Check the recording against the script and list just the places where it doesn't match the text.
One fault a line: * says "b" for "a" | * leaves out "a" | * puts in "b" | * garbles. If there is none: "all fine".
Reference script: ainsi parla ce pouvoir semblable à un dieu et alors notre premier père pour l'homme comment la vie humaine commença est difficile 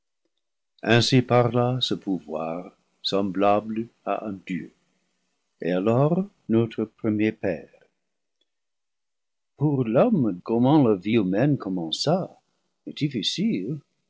all fine